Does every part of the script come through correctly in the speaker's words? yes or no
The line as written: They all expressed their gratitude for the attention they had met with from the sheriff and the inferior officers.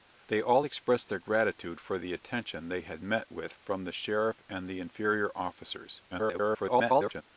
no